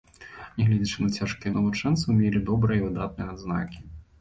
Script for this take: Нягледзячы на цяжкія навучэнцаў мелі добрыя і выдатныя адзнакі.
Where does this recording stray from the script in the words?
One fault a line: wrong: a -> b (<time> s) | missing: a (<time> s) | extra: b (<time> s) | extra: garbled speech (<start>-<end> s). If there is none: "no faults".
no faults